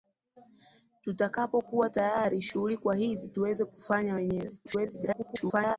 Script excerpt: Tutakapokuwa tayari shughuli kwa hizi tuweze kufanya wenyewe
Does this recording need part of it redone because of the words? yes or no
yes